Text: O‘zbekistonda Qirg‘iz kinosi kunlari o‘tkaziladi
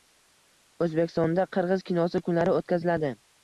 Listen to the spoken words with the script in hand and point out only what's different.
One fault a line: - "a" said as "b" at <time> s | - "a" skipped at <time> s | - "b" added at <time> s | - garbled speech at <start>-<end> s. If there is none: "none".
none